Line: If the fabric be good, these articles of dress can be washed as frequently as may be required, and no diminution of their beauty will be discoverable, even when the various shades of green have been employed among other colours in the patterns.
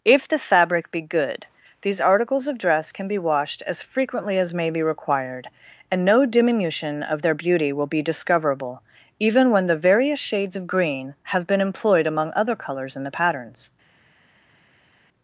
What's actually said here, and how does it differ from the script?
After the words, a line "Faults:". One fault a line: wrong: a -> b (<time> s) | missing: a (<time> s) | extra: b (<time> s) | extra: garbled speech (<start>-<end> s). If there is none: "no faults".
If the fabric be good, these articles of dress can be washed as frequently as may be required, and no diminution of their beauty will be discoverable, even when the various shades of green have been employed among other colours in the patterns.
Faults:
no faults